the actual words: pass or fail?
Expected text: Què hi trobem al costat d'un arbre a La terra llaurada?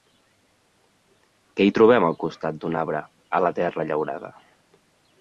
pass